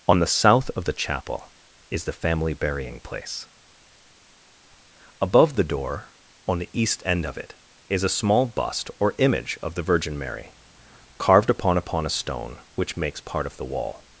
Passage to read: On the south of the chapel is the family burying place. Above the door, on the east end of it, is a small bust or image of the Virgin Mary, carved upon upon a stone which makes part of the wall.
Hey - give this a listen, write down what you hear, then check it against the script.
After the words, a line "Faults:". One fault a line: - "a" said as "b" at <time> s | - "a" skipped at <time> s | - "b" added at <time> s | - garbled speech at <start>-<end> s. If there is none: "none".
On the south of the chapel is the family burying place. Above the door, on the east end of it, is a small bust or image of the Virgin Mary, carved upon upon a stone which makes part of the wall.
Faults:
none